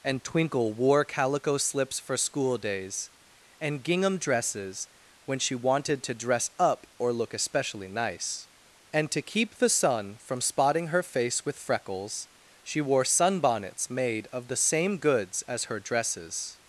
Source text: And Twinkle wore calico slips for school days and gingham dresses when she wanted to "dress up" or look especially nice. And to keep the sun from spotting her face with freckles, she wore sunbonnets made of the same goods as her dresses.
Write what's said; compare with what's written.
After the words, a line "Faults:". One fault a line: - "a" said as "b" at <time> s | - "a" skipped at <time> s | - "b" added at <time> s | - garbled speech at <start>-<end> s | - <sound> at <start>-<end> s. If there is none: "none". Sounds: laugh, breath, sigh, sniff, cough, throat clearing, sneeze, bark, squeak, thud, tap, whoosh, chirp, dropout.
And Twinkle wore calico slips for school days and gingham dresses when she wanted to "dress up" or look especially nice. And to keep the sun from spotting her face with freckles, she wore sunbonnets made of the same goods as her dresses.
Faults:
none